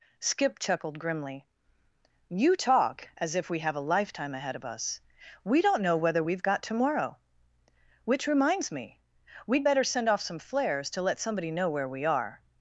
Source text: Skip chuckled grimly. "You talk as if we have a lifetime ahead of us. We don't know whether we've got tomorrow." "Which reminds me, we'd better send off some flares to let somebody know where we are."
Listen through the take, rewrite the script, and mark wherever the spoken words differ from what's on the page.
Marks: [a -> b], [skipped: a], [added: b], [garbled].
Skip chuckled grimly. "You talk as if we have a lifetime ahead of us. We don't know whether we've got tomorrow." "Which reminds me, we'd better send off some flares to let somebody know where we are."